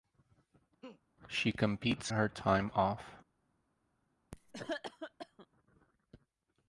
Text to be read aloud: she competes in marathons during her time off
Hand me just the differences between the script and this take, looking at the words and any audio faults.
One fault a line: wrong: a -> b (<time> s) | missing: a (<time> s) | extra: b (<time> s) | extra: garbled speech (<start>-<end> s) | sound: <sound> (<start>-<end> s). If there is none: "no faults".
sound: laugh (0.8-1.0 s)
missing: in marathons during (2.1 s)
sound: cough (4.3-5.5 s)